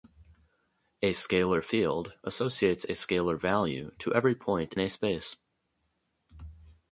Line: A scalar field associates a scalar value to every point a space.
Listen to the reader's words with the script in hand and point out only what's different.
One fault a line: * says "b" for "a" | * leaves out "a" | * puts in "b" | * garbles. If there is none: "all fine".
all fine